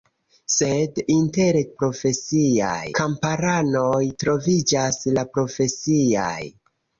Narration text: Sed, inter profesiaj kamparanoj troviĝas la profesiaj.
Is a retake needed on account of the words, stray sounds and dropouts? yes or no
no